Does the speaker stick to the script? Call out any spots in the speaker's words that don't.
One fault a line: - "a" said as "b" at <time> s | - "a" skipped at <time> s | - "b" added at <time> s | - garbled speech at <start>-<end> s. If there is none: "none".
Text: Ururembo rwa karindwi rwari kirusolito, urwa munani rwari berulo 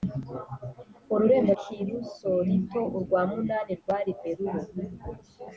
- "rwa karindwi rwari" skipped at 1.5 s